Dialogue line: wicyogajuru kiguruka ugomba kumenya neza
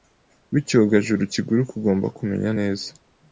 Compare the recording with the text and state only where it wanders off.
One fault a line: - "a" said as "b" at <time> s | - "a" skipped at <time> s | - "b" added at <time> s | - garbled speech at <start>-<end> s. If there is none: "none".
none